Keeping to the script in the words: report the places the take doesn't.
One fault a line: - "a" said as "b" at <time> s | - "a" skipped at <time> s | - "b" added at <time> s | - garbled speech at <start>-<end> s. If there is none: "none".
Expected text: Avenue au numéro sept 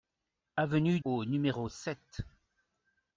none